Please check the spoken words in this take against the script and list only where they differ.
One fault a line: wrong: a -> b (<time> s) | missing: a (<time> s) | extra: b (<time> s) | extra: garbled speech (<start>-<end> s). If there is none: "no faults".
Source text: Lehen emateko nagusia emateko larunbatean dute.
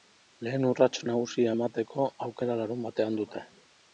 wrong: emateko -> urrats (0.7 s)
extra: aukera (2.3 s)